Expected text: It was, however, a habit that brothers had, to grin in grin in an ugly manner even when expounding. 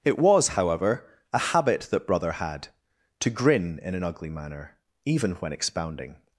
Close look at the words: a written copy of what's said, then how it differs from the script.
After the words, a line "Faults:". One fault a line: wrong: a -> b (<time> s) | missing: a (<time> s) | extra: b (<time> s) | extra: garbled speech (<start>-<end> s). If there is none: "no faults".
It was, however, a habit that brother had, to grin in an ugly manner even when expounding.
Faults:
wrong: brothers -> brother (2.1 s)
missing: grin in (3.9 s)